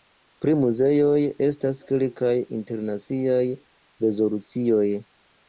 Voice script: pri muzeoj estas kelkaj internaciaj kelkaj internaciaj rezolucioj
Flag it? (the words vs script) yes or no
yes